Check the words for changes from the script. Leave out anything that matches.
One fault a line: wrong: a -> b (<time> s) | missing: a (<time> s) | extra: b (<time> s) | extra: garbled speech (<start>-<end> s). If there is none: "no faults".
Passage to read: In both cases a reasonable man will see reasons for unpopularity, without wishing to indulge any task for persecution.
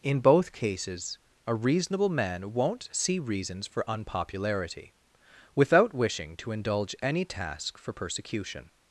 wrong: will -> won't (2.5 s)